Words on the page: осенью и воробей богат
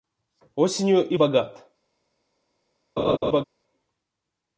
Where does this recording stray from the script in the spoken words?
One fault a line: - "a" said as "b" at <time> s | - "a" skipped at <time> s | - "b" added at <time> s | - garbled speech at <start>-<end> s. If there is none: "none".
- "воробей" skipped at 1.2 s